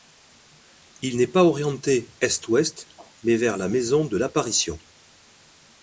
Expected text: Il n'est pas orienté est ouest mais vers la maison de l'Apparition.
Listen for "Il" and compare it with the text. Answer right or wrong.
right